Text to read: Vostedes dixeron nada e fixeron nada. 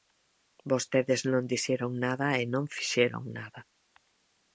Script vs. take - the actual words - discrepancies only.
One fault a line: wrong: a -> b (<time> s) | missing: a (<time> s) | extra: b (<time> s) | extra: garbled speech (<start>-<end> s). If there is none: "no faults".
extra: non (1.3 s)
extra: non (2.5 s)